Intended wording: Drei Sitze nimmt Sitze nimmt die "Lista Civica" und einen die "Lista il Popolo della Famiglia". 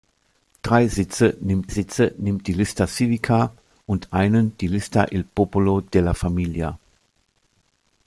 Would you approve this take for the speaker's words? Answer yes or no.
yes